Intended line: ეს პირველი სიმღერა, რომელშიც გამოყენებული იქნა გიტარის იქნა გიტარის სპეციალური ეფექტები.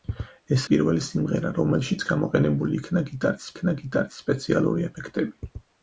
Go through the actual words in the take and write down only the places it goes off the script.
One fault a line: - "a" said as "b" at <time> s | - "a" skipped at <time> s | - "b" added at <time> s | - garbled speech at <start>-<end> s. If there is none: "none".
none